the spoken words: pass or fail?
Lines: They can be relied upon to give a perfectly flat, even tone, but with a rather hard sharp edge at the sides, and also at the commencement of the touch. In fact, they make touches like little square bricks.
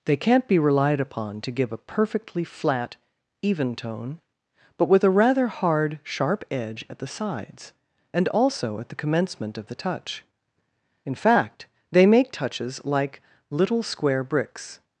fail